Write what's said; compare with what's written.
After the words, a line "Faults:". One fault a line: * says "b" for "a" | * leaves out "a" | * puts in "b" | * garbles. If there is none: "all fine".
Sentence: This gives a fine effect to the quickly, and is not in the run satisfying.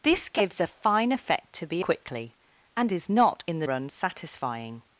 This gives a fine effect to the quickly, and is not in the run satisfying.
Faults:
all fine